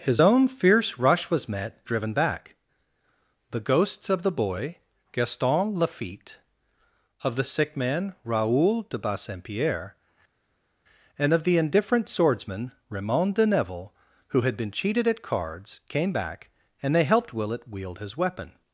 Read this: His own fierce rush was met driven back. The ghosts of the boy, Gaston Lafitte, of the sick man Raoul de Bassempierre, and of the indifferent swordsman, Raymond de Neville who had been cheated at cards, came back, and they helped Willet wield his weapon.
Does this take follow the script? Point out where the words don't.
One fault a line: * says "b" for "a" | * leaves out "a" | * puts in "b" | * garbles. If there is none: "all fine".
all fine